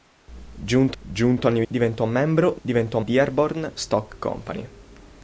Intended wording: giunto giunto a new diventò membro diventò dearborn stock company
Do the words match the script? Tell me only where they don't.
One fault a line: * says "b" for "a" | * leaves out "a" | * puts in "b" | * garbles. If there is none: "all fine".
all fine